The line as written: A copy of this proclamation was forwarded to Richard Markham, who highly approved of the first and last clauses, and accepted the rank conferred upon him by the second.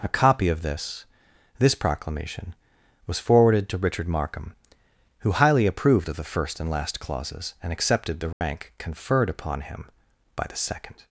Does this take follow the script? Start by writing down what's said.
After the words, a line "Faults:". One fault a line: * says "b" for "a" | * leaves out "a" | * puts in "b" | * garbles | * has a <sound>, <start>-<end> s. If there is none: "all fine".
A copy of this this proclamation was forwarded to Richard Markham, who highly approved of the first and last clauses, and accepted the rank conferred upon him by the second.
Faults:
* puts in "this"
* has a dropout, 8.3-8.4 s